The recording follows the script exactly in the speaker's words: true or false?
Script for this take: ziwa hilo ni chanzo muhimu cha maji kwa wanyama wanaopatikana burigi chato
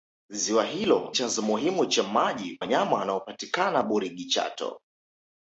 false